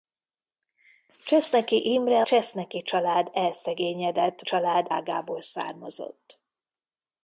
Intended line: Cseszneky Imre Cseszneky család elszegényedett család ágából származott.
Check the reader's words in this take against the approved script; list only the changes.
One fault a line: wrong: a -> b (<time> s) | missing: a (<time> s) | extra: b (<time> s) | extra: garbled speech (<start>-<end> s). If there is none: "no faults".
no faults